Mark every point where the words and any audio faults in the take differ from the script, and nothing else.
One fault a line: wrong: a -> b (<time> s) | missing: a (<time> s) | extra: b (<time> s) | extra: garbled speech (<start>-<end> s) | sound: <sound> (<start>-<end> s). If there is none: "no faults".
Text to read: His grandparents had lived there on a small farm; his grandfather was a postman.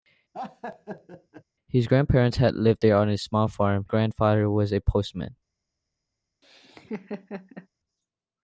sound: laugh (0.3-1.4 s)
missing: his (3.8 s)
sound: laugh (6.4-7.7 s)